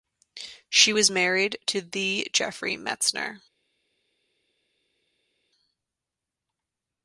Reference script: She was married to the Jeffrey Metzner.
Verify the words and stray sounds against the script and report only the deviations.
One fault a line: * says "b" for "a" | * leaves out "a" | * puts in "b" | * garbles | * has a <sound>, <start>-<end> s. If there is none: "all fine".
all fine